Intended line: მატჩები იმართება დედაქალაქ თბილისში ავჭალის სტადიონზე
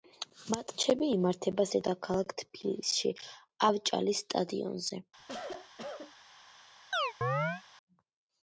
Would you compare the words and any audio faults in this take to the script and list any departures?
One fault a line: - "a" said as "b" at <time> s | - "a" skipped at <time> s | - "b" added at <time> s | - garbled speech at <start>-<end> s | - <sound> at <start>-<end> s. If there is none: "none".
- cough at 5.2-6.1 s
- chirp at 6.9-7.6 s